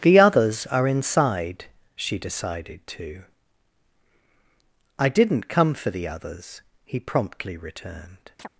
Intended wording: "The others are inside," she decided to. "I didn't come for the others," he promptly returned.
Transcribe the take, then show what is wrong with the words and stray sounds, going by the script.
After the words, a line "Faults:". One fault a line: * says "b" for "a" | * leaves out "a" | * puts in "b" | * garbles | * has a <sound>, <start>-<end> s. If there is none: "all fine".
"The others are inside," she decided to. "I didn't come for the others," he promptly returned.
Faults:
* has a chirp, 8.4-8.5 s